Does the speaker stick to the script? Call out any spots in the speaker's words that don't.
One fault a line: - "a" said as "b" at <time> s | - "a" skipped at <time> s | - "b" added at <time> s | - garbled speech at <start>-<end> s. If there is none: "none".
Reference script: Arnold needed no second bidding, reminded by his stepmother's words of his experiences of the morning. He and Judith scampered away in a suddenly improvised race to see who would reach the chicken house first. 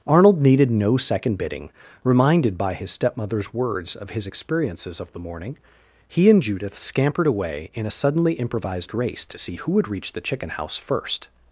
none